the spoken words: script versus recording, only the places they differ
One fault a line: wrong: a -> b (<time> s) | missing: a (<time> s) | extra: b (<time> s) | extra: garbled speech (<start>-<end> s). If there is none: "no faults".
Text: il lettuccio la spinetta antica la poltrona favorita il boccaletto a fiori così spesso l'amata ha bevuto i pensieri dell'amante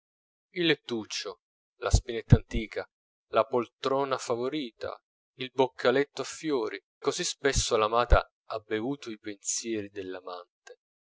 no faults